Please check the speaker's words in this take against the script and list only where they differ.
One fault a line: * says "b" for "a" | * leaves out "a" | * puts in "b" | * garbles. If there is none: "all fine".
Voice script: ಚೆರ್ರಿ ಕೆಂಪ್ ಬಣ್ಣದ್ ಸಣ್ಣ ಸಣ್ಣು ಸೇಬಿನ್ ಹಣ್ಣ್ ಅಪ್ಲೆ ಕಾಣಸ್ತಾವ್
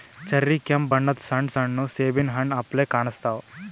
all fine